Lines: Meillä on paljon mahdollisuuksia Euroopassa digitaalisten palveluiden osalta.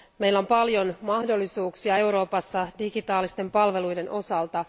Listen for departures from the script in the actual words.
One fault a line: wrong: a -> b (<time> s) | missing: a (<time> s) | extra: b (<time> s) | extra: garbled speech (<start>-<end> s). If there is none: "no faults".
no faults